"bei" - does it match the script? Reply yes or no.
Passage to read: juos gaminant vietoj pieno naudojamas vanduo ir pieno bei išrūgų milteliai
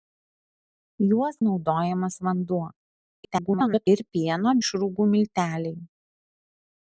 no